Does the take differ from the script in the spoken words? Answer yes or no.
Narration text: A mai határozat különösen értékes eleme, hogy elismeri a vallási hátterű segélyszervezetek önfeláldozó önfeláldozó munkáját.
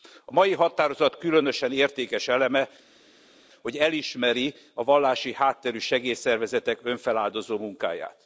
yes